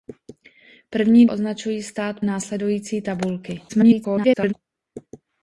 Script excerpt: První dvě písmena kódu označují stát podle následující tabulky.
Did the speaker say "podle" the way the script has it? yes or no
no